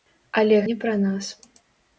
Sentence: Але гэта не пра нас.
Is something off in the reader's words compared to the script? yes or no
yes